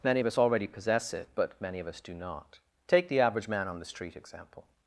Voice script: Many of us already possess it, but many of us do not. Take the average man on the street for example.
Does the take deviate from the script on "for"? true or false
true